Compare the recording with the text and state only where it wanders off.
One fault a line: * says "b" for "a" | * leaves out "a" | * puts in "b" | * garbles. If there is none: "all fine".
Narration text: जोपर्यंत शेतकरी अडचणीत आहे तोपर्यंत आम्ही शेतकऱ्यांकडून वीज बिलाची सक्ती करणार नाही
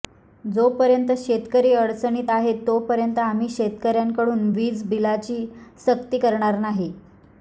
all fine